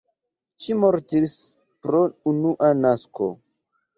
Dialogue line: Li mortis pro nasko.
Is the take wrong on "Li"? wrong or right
wrong